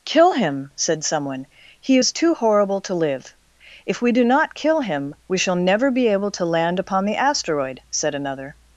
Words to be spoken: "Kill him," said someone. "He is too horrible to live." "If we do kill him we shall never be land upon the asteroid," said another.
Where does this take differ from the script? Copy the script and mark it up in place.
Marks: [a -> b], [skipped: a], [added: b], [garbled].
"Kill him," said someone. "He is too horrible to live." "If we do [added: not] kill him we shall never be [added: able to] land upon the asteroid," said another.